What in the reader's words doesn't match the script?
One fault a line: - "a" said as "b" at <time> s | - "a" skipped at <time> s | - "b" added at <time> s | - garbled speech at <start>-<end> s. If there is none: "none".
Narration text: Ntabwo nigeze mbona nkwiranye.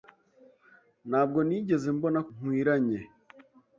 none